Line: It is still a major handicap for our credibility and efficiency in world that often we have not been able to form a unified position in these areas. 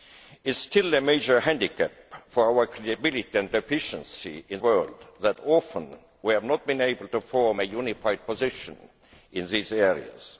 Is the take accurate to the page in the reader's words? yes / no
yes